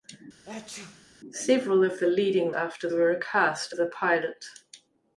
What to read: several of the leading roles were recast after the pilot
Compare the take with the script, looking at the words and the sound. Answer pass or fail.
fail